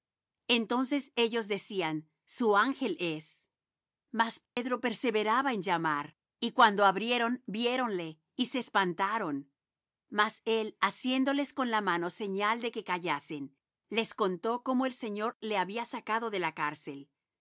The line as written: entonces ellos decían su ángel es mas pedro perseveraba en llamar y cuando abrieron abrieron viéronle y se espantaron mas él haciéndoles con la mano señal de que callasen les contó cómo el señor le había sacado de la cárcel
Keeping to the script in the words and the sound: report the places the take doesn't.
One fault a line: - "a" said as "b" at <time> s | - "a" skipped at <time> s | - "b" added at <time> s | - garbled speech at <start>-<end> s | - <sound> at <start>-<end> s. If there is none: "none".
- dropout at 4.5-4.6 s
- "abrieron" skipped at 7.4 s